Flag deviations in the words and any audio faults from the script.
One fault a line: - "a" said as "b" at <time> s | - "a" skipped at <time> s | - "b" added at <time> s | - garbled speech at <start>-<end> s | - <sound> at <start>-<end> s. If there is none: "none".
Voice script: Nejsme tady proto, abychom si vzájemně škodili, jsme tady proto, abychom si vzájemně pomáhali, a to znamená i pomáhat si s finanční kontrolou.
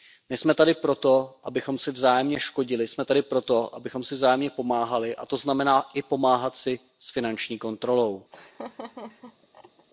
- laugh at 8.3-9.9 s